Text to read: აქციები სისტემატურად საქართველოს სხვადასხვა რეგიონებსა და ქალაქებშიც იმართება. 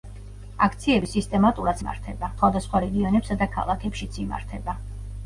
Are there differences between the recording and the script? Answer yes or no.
yes